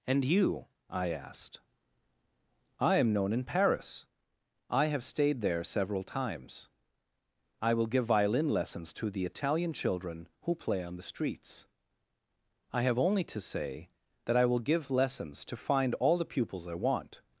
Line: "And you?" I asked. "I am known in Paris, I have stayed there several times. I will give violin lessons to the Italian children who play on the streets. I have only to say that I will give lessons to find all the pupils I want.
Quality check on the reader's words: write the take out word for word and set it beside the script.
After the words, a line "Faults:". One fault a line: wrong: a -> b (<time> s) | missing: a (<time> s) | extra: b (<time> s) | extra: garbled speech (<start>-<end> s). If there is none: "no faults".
"And you?" I asked. "I am known in Paris, I have stayed there several times. I will give violin lessons to the Italian children who play on the streets. I have only to say that I will give lessons to find all the pupils I want.
Faults:
no faults